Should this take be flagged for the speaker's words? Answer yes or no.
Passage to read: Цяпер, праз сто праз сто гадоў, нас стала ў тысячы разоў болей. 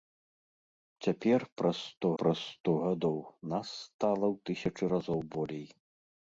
no